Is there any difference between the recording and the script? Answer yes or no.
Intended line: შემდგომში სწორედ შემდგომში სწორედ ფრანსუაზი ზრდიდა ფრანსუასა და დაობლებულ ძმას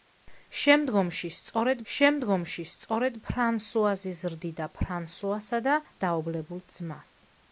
no